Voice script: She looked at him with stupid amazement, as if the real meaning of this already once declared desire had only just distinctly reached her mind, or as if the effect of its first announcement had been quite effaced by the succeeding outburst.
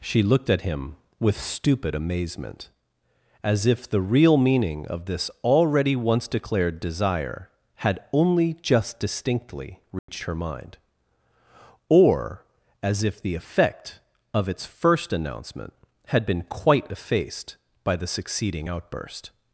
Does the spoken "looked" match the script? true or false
true